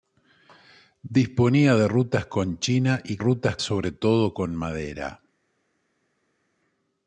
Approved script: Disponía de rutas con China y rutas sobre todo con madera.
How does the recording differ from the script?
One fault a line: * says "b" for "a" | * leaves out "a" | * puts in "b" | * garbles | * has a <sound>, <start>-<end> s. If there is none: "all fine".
all fine